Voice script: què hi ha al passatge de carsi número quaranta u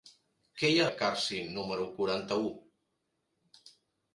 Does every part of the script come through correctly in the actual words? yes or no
no